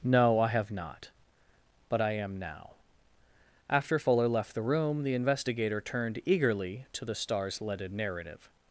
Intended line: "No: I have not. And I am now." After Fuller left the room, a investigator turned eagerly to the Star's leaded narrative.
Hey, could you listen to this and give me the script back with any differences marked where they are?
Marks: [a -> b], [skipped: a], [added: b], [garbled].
"No: I have not. [And -> But] I am now." After Fuller left the room, [a -> the] investigator turned eagerly to the Star's leaded narrative.